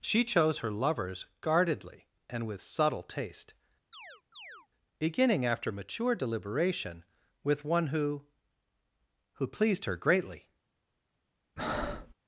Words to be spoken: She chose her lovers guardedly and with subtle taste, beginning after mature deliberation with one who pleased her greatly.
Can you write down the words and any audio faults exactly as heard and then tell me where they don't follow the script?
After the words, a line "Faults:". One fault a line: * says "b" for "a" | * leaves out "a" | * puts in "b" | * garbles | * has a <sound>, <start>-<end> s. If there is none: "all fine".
She chose her lovers guardedly and with subtle taste, beginning after mature deliberation with one who who pleased her greatly.
Faults:
* has a chirp, 3.9-4.7 s
* puts in "who"
* has a breath, 11.6-12.1 s